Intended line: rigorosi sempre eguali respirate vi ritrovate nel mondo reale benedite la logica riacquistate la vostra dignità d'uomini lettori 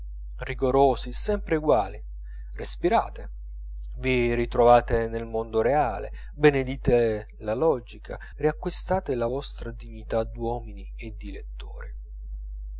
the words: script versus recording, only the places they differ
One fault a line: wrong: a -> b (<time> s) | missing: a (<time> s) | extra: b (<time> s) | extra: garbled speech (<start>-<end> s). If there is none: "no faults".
extra: e di (11.0 s)